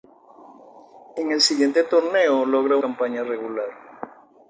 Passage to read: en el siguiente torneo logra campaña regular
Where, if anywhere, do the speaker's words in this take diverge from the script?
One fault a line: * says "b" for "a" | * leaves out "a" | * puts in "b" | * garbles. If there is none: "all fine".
all fine